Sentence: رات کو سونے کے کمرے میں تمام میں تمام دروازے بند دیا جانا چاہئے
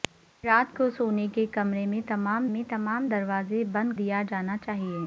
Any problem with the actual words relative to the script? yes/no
no